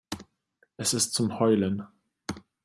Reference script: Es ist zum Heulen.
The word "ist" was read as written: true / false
true